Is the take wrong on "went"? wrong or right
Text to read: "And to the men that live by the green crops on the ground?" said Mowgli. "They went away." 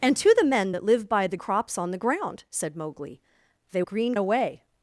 wrong